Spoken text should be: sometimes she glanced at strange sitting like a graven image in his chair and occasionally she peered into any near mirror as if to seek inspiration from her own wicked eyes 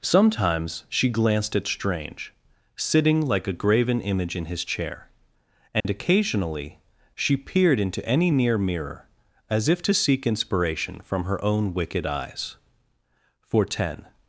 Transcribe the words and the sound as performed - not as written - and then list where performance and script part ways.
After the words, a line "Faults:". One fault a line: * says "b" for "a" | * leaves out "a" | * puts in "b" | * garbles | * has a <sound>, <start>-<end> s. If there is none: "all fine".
sometimes she glanced at strange sitting like a graven image in his chair and occasionally she peered into any near mirror as if to seek inspiration from her own wicked eyes for ten
Faults:
* has a dropout, 5.8-5.9 s
* puts in "for ten"